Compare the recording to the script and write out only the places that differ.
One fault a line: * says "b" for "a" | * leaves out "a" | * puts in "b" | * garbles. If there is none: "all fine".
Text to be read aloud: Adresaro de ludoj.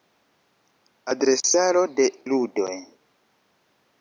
all fine